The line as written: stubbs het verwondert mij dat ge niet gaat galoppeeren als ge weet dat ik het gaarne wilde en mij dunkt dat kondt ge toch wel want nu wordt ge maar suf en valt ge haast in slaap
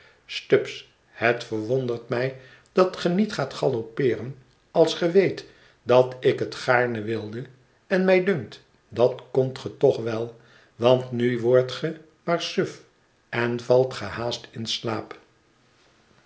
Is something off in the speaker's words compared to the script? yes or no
no